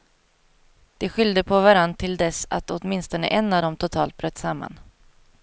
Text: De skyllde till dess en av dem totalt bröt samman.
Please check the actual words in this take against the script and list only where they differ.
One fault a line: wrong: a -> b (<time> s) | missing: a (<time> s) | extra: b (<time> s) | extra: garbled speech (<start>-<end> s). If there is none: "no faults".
extra: på varann (1.4 s)
extra: att åtminstone (2.5 s)